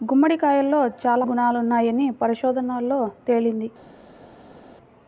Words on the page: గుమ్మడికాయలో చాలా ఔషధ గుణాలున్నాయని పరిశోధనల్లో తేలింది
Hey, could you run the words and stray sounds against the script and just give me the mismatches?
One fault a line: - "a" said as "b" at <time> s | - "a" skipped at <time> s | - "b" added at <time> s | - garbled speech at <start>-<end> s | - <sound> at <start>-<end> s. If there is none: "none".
- "ఔషధ" skipped at 1.2 s